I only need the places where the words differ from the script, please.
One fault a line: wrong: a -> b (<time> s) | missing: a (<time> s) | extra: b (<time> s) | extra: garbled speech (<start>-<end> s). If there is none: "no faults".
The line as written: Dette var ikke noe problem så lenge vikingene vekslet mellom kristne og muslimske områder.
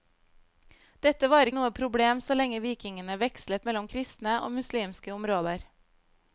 missing: ikke (1.5 s)